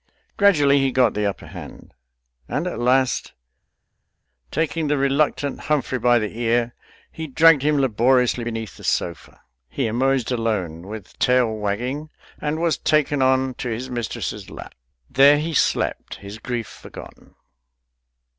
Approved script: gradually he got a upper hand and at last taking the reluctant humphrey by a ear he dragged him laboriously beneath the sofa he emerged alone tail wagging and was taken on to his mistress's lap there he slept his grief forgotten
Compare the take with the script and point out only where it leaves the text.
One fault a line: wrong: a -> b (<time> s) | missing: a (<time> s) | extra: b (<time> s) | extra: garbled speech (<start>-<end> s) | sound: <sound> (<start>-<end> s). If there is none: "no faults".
wrong: a -> the (1.1 s)
wrong: a -> the (6.2 s)
extra: with (10.9 s)